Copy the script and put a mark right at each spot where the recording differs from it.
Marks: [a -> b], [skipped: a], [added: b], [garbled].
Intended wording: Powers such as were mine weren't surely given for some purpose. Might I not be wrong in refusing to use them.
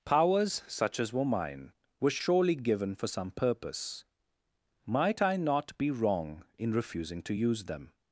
Powers such as were mine [weren't -> were] surely given for some purpose. Might I not be wrong in refusing to use them.